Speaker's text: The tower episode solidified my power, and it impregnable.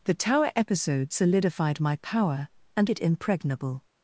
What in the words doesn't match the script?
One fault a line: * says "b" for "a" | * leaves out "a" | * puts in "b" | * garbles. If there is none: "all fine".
all fine